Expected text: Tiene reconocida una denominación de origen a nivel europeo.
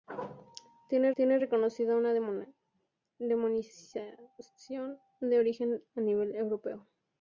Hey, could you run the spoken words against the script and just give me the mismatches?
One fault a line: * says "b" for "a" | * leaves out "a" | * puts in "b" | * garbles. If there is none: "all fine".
* puts in "tiene"